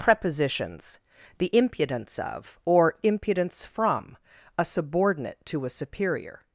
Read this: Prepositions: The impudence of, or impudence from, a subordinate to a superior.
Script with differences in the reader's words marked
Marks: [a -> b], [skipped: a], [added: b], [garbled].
Prepositions: The impudence of, or impudence from, a subordinate to a superior.